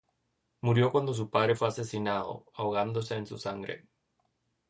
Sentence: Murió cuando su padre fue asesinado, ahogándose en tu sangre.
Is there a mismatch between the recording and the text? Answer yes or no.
yes